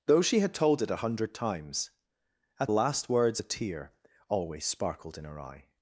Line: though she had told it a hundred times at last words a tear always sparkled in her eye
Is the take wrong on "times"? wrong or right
right